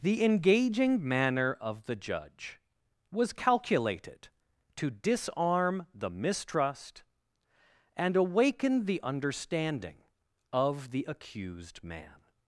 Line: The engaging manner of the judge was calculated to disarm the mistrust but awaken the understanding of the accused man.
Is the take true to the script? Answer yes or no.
no